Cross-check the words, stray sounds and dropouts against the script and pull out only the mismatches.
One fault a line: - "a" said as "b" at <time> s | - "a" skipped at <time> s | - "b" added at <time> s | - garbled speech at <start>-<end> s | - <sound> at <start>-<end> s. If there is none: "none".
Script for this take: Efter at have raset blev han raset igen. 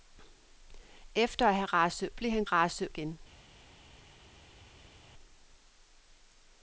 none